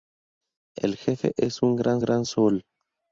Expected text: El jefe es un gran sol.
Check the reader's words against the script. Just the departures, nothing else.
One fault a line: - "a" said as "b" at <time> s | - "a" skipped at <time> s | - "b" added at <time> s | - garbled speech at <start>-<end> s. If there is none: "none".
- "gran" added at 2.0 s